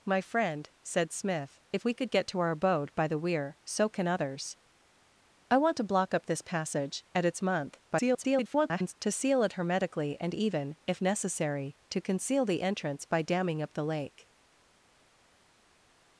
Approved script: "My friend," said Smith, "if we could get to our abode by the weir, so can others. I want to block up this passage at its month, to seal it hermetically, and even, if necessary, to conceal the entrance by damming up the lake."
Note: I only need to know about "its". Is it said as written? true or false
true